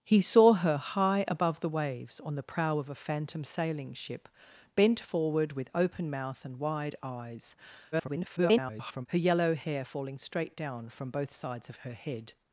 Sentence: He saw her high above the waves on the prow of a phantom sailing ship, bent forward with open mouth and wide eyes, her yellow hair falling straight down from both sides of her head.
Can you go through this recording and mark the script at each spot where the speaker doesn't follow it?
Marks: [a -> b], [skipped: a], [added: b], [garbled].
He saw her high above the waves on the prow of a phantom sailing ship, bent forward with open mouth and wide eyes, [garbled] her yellow hair falling straight down from both sides of her head.